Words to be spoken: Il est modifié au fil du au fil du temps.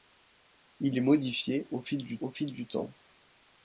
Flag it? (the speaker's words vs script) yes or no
no